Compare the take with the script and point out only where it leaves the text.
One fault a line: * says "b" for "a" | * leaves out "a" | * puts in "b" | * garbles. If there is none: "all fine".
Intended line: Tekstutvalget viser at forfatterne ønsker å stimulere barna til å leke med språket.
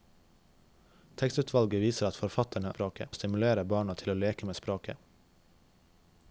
* says "språket" for "ønsker"